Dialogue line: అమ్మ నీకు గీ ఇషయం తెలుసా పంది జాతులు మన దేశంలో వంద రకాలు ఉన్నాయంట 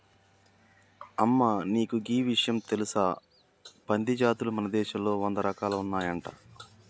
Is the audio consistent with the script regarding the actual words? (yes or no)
yes